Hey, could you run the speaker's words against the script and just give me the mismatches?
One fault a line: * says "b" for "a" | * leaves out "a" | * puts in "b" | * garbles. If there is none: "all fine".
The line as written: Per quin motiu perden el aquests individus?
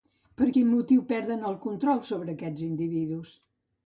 * puts in "control sobre"